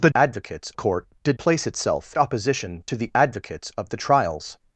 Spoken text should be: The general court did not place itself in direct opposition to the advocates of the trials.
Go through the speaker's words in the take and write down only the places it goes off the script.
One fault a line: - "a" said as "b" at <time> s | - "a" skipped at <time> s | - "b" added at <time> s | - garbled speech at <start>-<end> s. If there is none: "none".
- "general" said as "advocates" at 0.2 s
- "not" skipped at 1.4 s
- "in direct" skipped at 2.2 s